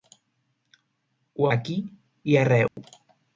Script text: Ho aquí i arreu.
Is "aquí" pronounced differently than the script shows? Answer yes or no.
no